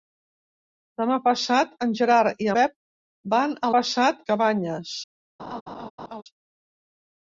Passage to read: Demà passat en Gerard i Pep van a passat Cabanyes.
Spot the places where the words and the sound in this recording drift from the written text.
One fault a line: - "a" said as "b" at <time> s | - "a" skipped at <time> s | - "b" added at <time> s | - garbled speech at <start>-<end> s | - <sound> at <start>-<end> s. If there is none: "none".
- laugh at 5.4-6.2 s